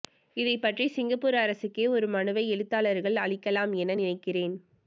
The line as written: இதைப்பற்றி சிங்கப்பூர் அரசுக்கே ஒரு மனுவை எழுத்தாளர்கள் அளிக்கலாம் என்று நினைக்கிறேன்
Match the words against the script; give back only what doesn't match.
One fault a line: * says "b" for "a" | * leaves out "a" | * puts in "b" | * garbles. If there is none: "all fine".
* says "என" for "என்று"